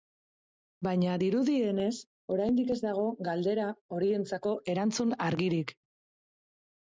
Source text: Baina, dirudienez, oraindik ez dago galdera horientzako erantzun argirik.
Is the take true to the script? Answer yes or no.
yes